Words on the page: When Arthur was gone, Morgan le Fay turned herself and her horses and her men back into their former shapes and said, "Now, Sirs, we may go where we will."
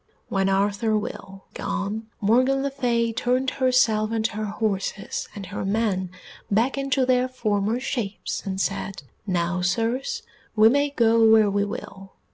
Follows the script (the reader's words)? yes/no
no